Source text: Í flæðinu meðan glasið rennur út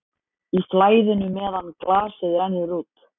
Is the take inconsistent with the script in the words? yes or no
no